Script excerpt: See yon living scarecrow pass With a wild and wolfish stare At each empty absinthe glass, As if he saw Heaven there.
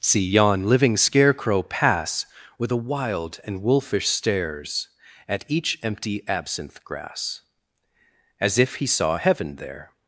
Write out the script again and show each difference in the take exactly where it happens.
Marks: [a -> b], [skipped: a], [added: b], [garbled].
See yon living scarecrow pass With a wild and wolfish [stare -> stares] At each empty absinthe [glass, -> grass] As if he saw Heaven there.